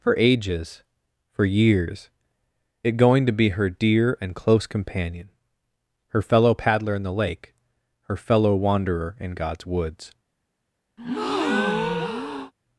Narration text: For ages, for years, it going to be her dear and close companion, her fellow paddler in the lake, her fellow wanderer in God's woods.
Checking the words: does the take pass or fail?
pass